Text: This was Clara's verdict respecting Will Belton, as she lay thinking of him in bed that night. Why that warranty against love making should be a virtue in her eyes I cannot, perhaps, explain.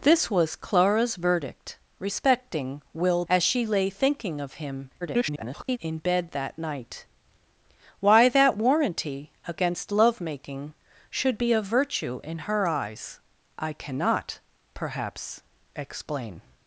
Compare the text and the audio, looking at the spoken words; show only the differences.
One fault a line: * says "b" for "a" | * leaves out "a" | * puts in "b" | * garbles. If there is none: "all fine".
* leaves out "Belton"
* garbles